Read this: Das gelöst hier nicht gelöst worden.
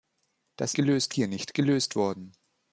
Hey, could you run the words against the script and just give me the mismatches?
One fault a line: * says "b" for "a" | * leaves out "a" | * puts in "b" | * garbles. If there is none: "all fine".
all fine